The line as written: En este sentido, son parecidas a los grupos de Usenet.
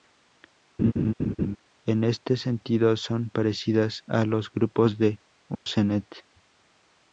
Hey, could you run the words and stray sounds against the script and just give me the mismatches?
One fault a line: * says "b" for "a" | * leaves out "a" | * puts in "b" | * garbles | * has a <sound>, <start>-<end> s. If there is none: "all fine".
* has a laugh, 0.8-1.6 s
* has a dropout, 5.5-5.7 s